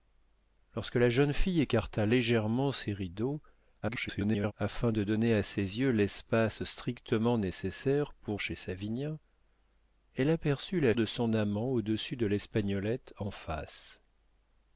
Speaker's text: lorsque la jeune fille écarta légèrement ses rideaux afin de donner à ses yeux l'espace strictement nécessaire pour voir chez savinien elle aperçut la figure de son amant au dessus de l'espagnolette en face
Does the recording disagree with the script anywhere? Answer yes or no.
yes